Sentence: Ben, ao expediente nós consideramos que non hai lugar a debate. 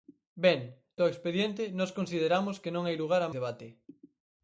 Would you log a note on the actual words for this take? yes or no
no